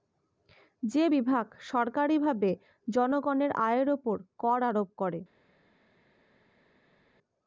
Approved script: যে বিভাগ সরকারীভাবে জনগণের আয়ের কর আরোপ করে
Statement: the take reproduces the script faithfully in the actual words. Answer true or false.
false